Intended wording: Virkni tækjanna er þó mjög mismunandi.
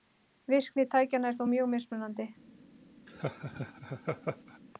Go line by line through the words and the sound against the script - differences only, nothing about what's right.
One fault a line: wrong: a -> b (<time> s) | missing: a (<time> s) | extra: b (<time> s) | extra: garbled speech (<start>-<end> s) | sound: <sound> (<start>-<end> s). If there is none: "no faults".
sound: laugh (3.1-4.6 s)